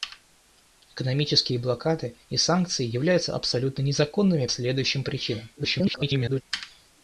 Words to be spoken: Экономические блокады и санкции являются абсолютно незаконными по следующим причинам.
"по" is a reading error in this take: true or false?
true